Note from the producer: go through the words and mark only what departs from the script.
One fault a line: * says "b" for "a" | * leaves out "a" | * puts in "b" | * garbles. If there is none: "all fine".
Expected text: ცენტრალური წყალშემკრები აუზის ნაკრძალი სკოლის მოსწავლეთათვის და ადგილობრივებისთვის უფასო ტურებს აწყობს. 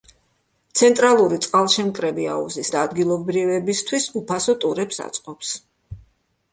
* leaves out "ნაკრძალი სკოლის მოსწავლეთათვის"